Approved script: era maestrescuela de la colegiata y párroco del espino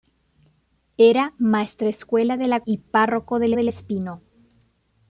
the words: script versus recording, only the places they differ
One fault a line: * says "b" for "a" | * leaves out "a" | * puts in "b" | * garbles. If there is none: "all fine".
* leaves out "colegiata"
* puts in "del"